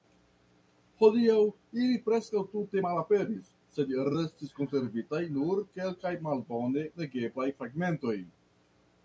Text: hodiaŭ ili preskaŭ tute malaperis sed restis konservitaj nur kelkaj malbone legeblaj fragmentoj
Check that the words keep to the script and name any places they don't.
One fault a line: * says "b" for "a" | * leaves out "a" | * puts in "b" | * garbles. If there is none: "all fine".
all fine